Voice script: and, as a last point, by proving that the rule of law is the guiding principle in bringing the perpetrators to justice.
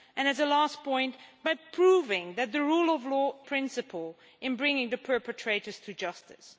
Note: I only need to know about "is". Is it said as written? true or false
false